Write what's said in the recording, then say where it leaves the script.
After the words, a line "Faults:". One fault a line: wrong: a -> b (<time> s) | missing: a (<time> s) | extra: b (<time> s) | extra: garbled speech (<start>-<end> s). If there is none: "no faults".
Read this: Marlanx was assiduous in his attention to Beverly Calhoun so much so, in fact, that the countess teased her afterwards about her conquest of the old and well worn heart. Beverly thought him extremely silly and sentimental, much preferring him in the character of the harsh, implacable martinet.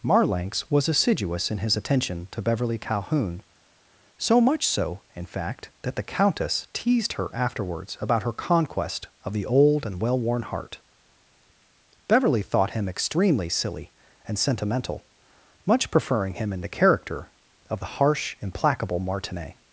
Marlanx was assiduous in his attention to Beverly Calhoun so much so, in fact, that the countess teased her afterwards about her conquest of the old and well worn heart. Beverly thought him extremely silly and sentimental, much preferring him in the character of the harsh, implacable martinet.
Faults:
no faults